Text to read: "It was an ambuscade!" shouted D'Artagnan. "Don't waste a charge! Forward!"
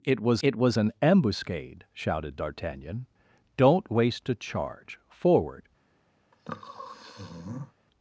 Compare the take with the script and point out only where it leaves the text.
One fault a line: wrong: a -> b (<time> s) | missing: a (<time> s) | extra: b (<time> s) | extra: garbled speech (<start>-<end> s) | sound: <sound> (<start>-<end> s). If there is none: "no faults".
extra: it was (0.4 s)
sound: sniff (6.3-7.7 s)